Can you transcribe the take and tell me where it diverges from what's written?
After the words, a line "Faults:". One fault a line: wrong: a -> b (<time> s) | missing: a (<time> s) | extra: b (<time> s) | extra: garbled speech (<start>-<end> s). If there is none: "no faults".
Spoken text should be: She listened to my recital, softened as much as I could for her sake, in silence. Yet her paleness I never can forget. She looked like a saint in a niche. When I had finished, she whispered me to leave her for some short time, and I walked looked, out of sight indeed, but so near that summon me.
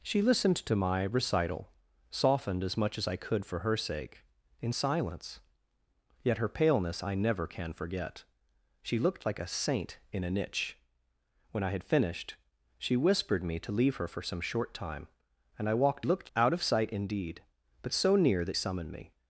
She listened to my recital, softened as much as I could for her sake, in silence. Yet her paleness I never can forget. She looked like a saint in a niche. When I had finished, she whispered me to leave her for some short time, and I walked looked, out of sight indeed, but so near that summon me.
Faults:
no faults